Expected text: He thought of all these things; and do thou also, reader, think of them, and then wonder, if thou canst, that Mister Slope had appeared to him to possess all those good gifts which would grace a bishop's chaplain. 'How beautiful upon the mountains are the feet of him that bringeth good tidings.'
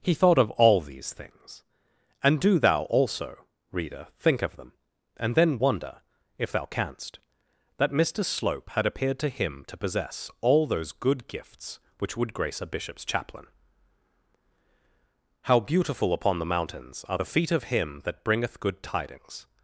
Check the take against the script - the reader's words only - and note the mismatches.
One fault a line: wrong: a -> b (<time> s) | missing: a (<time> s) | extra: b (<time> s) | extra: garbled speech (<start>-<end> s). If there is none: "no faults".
no faults